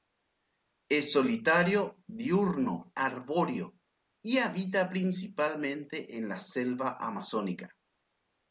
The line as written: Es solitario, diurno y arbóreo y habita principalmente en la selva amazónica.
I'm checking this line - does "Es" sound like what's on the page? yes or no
yes